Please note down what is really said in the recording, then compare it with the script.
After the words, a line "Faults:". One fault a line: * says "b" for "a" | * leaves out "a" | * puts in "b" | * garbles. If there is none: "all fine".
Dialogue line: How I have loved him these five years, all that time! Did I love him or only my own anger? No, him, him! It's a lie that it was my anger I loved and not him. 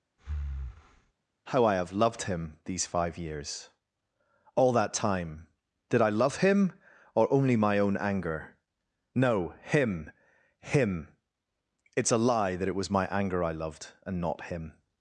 How I have loved him these five years, all that time! Did I love him or only my own anger? No, him, him! It's a lie that it was my anger I loved and not him.
Faults:
all fine